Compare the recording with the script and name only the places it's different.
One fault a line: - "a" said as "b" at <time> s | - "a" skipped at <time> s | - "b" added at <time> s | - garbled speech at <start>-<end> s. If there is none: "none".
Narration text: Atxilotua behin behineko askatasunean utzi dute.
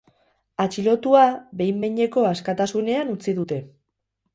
none